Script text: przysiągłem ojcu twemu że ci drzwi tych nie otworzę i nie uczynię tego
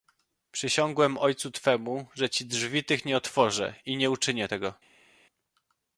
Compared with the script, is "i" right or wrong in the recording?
right